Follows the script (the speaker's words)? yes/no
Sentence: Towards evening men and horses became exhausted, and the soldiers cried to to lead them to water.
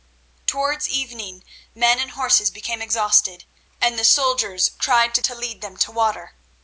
yes